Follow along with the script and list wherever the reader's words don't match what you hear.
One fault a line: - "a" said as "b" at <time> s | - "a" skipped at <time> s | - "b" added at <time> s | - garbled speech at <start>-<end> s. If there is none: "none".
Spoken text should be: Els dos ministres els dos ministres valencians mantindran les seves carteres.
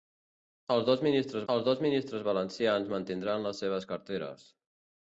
none